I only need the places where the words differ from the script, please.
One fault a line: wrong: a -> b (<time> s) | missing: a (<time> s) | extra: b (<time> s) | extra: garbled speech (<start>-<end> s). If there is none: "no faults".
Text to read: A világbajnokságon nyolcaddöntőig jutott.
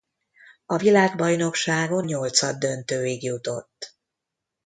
no faults